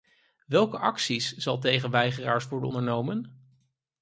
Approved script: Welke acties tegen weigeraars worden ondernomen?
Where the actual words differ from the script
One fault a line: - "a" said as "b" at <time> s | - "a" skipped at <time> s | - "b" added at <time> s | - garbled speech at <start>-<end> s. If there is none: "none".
- "zal" added at 1.4 s